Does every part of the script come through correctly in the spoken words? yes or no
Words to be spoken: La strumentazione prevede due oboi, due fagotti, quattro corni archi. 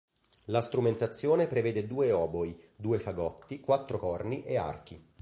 no